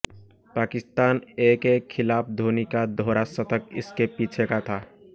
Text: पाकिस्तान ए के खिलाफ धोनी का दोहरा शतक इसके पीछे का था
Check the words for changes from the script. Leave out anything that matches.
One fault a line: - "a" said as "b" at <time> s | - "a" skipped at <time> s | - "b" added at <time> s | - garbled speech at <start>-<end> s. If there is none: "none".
none